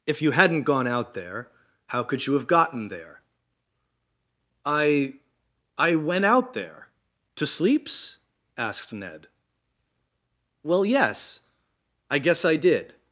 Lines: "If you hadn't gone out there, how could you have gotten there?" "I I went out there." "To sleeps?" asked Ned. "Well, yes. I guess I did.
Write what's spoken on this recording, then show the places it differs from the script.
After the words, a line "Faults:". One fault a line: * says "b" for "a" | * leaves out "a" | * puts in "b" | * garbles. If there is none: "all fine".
"If you hadn't gone out there, how could you have gotten there?" "I I went out there." "To sleeps?" asked Ned. "Well, yes. I guess I did.
Faults:
all fine